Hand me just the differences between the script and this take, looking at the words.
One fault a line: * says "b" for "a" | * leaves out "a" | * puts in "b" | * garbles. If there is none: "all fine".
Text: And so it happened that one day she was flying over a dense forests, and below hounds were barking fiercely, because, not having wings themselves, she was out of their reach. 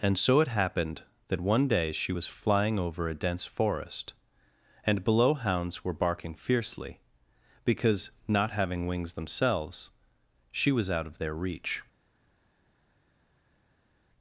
* says "forest" for "forests"